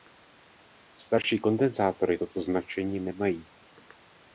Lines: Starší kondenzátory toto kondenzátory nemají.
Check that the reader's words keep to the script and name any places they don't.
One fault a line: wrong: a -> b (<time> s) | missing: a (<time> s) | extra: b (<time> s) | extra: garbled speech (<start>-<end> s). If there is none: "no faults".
wrong: kondenzátory -> značení (2.4 s)